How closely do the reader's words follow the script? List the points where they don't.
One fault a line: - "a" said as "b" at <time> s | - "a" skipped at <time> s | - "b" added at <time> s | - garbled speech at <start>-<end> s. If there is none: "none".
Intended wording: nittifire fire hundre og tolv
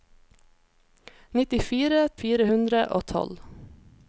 none